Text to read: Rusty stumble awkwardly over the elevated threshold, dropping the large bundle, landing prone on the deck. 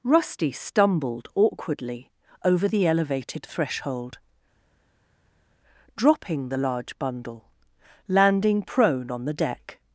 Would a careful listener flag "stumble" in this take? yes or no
yes